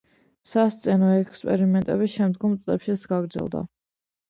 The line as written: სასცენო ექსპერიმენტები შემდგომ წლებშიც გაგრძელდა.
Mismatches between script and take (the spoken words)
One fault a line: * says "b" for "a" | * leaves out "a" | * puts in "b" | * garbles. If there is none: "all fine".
all fine